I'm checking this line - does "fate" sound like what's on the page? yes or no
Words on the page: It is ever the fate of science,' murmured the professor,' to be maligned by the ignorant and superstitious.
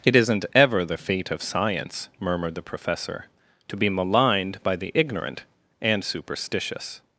yes